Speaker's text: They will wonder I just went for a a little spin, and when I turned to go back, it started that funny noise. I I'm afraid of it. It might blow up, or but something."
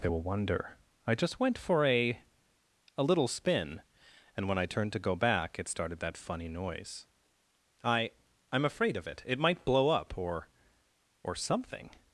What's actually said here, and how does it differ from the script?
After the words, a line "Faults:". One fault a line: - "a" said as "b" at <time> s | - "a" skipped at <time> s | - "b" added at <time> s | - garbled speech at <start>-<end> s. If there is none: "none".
They will wonder I just went for a a little spin, and when I turned to go back, it started that funny noise. I I'm afraid of it. It might blow up, or or something."
Faults:
- "but" said as "or" at 11.2 s